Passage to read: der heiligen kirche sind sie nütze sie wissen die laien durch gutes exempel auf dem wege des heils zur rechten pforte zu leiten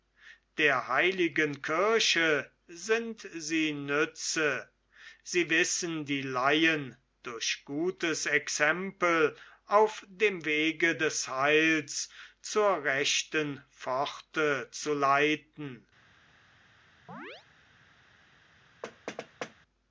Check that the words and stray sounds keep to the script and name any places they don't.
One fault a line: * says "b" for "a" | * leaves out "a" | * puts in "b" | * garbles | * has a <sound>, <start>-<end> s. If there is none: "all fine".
* has a chirp, 17.1-17.5 s
* has a thud, 18.8-19.5 s